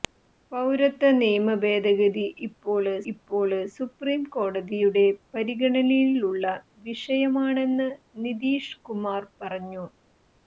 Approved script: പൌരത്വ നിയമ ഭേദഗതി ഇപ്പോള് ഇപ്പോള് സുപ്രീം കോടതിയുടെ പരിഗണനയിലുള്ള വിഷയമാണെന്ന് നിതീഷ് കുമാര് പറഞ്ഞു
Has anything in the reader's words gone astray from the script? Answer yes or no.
no